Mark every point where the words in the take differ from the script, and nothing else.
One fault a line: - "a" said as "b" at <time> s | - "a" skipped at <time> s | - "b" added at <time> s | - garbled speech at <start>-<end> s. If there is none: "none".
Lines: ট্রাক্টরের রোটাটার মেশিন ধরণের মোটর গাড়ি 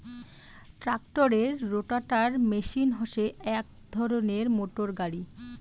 - "হসে এক" added at 2.9 s